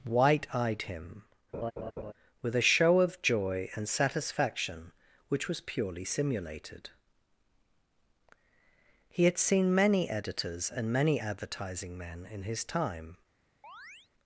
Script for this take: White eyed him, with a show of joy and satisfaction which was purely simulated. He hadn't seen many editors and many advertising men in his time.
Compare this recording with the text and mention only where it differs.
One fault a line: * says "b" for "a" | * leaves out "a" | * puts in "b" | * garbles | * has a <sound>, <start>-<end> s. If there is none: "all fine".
* has a laugh, 1.5-2.1 s
* says "had" for "hadn't"
* has a chirp, 13.6-14.1 s